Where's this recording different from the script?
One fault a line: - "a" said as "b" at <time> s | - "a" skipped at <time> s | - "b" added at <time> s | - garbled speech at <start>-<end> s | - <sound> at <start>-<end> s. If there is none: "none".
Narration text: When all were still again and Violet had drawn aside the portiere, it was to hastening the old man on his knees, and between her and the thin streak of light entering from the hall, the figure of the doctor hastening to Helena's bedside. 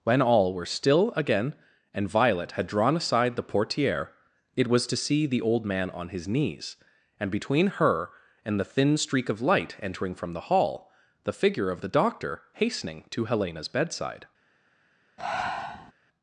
- "hastening" said as "see" at 5.0 s
- breath at 15.2-15.9 s